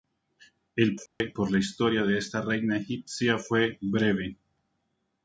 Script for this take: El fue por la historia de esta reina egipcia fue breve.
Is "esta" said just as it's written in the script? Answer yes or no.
yes